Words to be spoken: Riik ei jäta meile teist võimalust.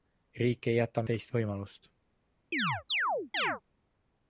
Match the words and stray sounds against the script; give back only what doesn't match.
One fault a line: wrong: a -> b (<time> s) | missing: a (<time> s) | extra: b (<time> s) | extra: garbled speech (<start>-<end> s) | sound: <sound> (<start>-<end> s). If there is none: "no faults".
missing: meile (1.0 s)
sound: chirp (2.5-3.6 s)